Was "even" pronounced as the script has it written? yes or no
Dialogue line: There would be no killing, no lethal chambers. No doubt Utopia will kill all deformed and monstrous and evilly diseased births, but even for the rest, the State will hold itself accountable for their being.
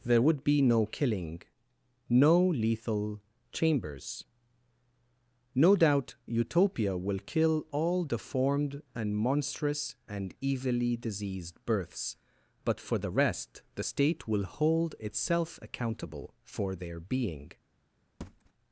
no